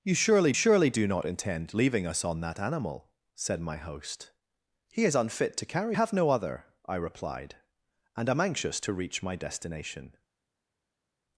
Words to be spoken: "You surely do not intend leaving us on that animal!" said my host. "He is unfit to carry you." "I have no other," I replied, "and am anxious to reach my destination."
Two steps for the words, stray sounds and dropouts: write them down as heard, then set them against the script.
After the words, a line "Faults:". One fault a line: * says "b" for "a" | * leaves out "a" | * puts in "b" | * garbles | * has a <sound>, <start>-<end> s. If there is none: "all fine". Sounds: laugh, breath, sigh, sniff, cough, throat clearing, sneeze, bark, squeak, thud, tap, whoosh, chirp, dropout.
"You surely surely do not intend leaving us on that animal!" said my host. "He is unfit to carry have no other," I replied, "and am anxious to reach my destination."
Faults:
* puts in "surely"
* leaves out "you I"